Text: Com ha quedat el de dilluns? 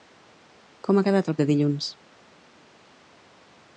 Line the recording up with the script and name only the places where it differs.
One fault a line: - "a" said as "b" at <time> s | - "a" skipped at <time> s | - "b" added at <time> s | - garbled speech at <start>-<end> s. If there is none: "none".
none